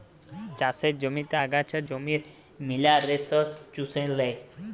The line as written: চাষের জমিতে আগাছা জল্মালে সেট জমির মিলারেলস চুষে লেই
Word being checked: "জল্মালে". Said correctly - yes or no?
no